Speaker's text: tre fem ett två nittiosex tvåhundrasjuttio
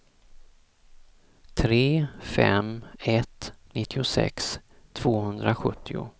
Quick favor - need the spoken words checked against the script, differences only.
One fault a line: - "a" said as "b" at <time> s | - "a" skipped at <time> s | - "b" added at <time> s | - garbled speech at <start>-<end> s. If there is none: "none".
- "två" skipped at 3.5 s